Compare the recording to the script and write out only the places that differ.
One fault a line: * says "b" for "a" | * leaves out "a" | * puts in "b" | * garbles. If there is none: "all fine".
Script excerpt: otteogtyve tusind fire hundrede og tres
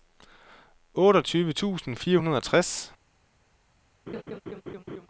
all fine